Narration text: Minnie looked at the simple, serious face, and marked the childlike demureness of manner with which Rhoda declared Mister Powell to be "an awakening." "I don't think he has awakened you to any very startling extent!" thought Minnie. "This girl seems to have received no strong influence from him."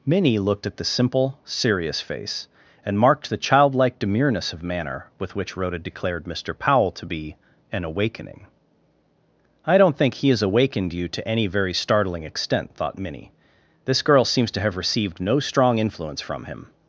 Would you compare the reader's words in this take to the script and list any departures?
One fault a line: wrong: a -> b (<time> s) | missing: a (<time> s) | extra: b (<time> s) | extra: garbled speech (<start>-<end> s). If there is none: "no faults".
no faults